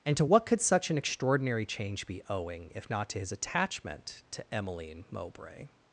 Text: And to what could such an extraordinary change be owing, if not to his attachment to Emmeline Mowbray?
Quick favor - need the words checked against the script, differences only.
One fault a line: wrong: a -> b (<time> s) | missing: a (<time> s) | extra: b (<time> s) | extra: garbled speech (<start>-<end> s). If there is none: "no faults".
no faults